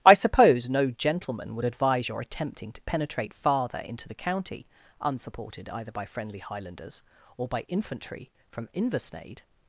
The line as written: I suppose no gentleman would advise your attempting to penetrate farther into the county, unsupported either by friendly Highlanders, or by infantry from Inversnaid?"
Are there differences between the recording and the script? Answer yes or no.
no